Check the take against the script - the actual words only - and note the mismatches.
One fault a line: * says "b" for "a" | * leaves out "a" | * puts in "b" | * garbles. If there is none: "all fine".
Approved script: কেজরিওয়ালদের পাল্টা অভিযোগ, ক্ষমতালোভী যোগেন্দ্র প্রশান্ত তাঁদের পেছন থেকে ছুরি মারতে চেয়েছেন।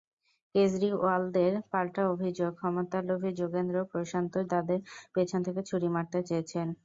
all fine